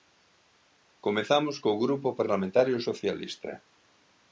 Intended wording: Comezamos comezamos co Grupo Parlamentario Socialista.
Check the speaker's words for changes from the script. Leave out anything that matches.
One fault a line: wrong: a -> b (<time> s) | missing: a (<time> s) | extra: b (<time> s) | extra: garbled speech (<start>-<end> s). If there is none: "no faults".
missing: comezamos (1.6 s)